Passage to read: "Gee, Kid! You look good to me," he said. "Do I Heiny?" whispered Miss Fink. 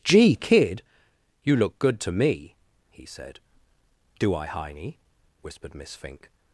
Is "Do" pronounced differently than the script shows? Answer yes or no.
no